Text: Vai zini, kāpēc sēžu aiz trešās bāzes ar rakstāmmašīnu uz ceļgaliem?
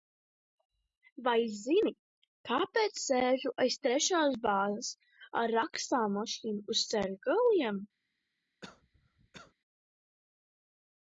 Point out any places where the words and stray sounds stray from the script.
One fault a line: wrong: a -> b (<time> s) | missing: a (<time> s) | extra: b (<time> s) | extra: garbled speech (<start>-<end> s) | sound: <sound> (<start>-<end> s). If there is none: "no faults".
sound: cough (8.6-9.5 s)